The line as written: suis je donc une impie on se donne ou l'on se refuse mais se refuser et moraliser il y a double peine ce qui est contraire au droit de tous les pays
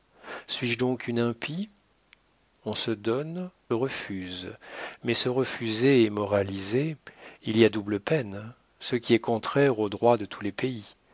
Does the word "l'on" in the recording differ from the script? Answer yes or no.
yes